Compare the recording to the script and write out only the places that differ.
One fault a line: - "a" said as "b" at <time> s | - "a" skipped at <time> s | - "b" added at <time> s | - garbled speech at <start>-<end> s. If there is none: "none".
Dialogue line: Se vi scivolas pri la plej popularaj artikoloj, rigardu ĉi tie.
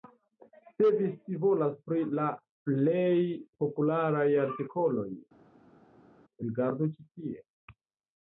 none